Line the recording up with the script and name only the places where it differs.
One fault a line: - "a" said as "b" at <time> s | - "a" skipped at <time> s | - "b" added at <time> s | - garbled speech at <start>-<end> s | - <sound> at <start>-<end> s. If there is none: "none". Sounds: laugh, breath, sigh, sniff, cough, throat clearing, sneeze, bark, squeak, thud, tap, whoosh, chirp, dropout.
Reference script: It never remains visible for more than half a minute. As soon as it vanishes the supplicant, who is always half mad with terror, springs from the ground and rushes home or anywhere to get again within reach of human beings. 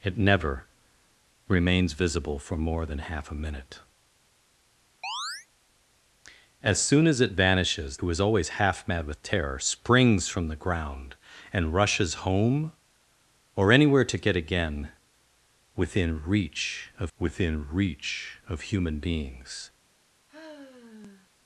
- chirp at 5.0-5.5 s
- "the supplicant" skipped at 8.0 s
- "within reach of" added at 17.2 s
- sigh at 20.3-21.3 s